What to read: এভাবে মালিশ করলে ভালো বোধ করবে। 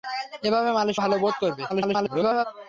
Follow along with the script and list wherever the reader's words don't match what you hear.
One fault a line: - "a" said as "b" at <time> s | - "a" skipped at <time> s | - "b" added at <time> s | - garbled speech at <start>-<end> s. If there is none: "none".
- "করলে" skipped at 1.0 s
- garbled speech at 1.7-2.4 s